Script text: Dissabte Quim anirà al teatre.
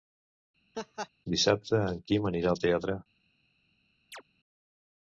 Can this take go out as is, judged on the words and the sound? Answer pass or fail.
fail